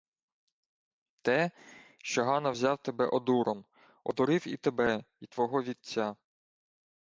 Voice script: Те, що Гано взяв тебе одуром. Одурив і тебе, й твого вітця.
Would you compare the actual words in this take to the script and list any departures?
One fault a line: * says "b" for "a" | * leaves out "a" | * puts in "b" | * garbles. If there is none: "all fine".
all fine